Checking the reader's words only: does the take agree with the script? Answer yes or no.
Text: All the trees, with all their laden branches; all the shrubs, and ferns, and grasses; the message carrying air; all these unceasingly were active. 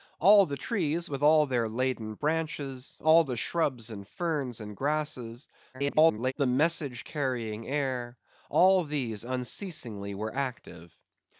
no